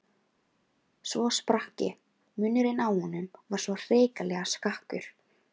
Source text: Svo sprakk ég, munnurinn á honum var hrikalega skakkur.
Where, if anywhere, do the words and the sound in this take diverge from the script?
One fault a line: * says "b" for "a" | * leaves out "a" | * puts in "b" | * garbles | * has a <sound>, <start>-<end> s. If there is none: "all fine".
* puts in "svo"